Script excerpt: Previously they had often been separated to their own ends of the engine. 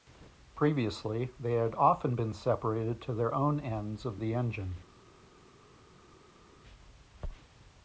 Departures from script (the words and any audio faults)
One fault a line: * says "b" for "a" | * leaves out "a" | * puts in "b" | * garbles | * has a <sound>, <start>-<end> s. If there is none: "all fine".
all fine